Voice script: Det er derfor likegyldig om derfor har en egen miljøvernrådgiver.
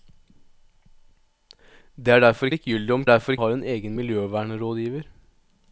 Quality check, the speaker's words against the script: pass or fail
pass